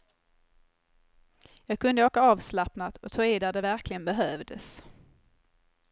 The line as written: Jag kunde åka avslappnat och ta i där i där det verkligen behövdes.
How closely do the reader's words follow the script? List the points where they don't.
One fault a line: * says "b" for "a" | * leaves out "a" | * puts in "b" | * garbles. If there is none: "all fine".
* leaves out "i där"